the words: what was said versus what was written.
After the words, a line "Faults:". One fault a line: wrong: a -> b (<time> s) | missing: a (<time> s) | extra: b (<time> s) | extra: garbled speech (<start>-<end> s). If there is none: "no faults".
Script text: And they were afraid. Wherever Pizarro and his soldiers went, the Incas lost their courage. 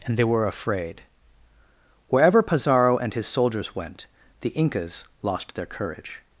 And they were afraid. Wherever Pizarro and his soldiers went, the Incas lost their courage.
Faults:
no faults